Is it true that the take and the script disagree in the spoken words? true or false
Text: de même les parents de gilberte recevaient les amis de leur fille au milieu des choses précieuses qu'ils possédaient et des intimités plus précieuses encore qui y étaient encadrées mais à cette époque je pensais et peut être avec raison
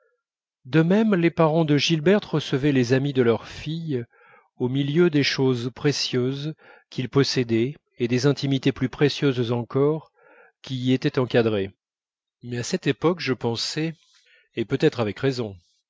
false